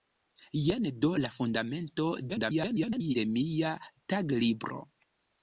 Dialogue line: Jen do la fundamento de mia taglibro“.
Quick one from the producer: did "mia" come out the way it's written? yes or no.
yes